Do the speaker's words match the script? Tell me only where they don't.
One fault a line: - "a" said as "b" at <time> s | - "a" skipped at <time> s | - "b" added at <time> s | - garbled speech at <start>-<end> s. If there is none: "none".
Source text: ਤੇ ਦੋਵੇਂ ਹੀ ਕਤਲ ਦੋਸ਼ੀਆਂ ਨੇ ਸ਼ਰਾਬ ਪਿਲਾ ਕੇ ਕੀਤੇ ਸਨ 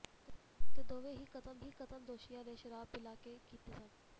- "ਹੀ ਕਤਲ" added at 1.6 s